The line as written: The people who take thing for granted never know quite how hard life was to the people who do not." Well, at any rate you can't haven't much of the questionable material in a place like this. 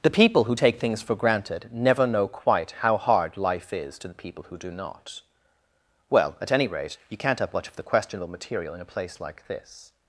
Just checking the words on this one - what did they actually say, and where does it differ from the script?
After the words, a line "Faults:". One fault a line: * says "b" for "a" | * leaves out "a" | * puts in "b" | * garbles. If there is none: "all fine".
The people who take things for granted never know quite how hard life is to the people who do not." Well, at any rate you can't have much of the questionable material in a place like this.
Faults:
* says "things" for "thing"
* says "is" for "was"
* says "have" for "haven't"